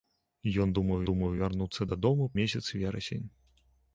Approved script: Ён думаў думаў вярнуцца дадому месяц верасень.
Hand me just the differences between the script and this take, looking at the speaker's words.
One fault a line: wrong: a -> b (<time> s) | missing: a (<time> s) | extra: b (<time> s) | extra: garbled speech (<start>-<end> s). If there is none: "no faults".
no faults